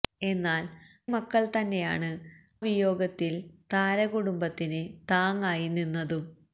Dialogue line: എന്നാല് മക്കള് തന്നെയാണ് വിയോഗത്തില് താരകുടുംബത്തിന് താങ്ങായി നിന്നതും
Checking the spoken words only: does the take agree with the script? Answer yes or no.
yes